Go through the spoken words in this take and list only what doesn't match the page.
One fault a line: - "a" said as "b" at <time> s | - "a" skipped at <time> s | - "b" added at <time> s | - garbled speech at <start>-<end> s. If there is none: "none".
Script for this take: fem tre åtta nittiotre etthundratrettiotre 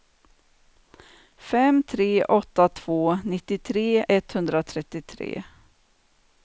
- "två" added at 2.7 s